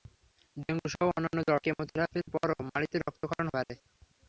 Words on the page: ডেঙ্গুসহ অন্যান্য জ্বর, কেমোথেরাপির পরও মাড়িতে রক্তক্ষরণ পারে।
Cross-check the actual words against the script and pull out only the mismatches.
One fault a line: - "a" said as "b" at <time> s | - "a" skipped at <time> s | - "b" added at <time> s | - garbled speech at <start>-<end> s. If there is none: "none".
none